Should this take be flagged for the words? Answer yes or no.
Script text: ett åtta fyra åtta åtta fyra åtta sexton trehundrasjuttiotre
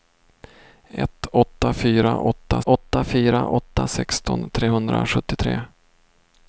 no